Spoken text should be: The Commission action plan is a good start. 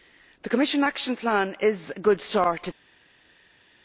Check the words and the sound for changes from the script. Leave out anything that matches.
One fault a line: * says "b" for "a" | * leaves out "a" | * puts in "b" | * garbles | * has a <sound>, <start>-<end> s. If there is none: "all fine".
all fine